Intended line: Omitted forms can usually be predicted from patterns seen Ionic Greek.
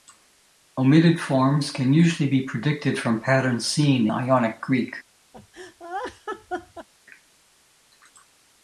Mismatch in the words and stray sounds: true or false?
true